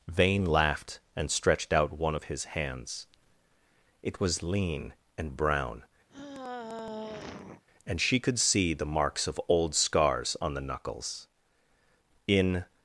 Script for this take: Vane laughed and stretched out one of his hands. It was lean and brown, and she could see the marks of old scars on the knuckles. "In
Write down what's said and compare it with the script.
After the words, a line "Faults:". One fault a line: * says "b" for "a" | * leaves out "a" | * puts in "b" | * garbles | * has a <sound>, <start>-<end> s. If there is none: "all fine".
Vane laughed and stretched out one of his hands. It was lean and brown, and she could see the marks of old scars on the knuckles. "In
Faults:
* has a sigh, 6.1-7.6 s